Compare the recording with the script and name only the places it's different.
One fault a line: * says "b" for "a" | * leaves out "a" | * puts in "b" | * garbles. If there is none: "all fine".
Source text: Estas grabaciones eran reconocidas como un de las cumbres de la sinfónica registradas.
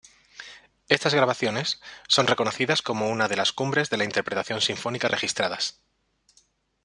* says "son" for "eran"
* says "una" for "un"
* puts in "interpretación"